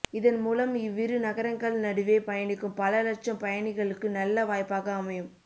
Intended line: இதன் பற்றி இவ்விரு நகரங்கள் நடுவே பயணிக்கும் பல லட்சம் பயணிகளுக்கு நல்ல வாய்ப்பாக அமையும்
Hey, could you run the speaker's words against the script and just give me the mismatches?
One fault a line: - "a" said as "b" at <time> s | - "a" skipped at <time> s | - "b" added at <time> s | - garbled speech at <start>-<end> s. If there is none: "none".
- "பற்றி" said as "மூலம்" at 0.4 s